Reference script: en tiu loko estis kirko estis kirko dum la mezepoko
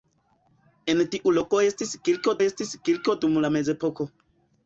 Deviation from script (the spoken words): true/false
false